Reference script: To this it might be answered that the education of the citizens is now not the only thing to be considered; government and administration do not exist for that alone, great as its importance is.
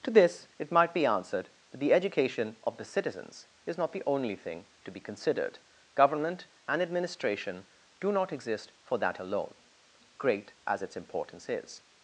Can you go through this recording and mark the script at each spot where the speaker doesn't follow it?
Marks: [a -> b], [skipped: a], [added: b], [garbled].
To this it might be answered that the education of the citizens is [skipped: now] not the only thing to be considered; government and administration do not exist for that alone, great as its importance is.